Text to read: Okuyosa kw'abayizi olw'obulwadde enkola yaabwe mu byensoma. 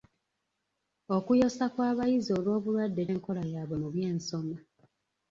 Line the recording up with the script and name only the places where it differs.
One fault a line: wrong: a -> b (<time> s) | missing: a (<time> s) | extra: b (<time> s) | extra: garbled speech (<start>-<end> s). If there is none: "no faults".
no faults